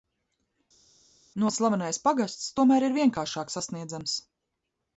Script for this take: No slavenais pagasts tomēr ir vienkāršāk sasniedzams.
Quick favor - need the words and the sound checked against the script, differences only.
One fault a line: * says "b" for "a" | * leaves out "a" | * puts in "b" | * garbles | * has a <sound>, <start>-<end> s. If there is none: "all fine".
all fine